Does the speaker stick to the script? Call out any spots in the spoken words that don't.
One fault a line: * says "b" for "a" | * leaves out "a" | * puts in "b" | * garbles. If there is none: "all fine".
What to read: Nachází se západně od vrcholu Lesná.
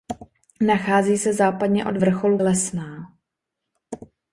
all fine